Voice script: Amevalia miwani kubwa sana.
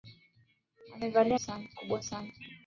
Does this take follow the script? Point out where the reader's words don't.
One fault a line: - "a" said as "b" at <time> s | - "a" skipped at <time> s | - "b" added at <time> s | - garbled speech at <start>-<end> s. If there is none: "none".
- "miwani" said as "sana" at 1.4 s